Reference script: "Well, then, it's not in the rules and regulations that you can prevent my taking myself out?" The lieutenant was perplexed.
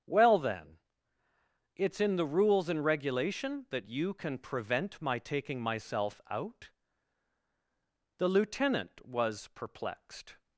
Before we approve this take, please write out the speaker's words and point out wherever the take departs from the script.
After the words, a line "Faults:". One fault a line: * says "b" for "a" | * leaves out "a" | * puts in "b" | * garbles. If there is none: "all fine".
"Well, then, it's in the rules and regulation that you can prevent my taking myself out?" The lieutenant was perplexed.
Faults:
* leaves out "not"
* says "regulation" for "regulations"